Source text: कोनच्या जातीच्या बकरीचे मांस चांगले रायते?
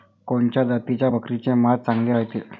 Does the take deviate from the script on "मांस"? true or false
false